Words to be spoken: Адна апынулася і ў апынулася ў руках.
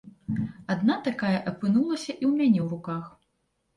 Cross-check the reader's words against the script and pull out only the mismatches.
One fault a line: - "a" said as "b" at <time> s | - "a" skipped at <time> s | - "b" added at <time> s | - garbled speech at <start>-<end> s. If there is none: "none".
- "такая" added at 1.1 s
- "апынулася" said as "мяне" at 2.4 s